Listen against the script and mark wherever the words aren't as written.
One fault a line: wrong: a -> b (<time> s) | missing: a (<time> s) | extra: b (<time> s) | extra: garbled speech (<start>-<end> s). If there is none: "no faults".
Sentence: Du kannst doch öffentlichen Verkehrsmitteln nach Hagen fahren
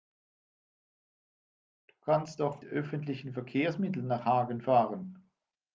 no faults